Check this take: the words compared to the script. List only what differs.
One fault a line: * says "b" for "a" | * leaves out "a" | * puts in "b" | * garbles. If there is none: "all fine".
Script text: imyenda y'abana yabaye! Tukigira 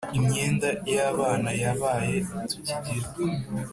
all fine